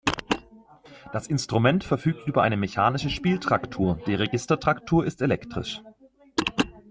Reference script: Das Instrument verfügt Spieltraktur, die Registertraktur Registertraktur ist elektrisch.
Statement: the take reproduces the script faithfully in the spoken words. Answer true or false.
false